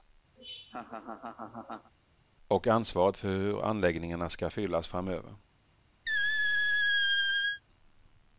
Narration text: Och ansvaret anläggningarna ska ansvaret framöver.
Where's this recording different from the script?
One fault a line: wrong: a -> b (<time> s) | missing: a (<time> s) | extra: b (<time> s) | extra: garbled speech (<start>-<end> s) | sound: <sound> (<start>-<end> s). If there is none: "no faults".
sound: laugh (0.4-1.9 s)
extra: för hur (3.2 s)
wrong: ansvaret -> fyllas (4.5 s)
sound: squeak (6.1-7.6 s)